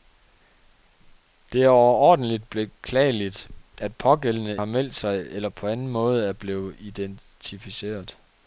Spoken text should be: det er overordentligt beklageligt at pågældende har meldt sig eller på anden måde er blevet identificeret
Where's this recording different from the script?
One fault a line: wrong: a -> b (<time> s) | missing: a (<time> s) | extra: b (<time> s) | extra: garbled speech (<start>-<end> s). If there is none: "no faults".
no faults